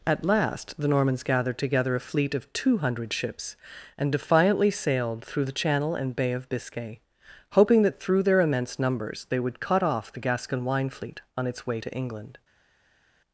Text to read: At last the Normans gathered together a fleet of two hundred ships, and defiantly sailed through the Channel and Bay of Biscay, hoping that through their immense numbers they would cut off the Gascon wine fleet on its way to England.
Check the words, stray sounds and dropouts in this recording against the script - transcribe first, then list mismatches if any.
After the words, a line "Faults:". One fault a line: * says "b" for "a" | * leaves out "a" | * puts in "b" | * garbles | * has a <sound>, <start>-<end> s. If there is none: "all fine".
At last the Normans gathered together a fleet of two hundred ships, and defiantly sailed through the Channel and Bay of Biscay, hoping that through their immense numbers they would cut off the Gascon wine fleet on its way to England.
Faults:
all fine